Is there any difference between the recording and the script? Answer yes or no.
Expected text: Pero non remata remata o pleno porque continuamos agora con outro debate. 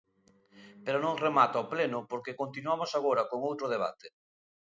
yes